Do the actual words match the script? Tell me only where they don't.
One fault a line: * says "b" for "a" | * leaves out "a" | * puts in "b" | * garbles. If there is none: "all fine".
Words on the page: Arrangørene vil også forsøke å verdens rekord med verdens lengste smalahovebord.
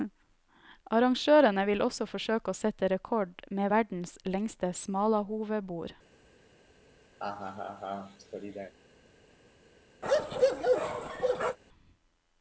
* says "sette" for "verdens"